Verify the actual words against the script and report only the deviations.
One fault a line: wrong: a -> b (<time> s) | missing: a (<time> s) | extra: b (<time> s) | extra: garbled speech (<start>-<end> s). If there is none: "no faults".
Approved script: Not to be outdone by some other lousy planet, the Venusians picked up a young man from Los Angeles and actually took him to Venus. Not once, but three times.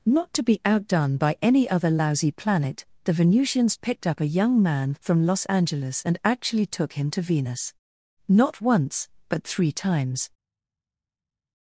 wrong: some -> any (1.4 s)